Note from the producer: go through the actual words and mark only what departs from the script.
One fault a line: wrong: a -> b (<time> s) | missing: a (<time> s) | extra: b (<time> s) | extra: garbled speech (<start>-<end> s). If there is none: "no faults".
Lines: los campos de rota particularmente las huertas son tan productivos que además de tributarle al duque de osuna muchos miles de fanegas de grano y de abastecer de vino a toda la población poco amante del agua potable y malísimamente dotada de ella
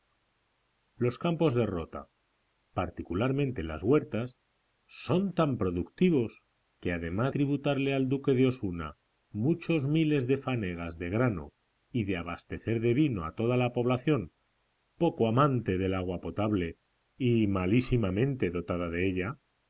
missing: de (7.3 s)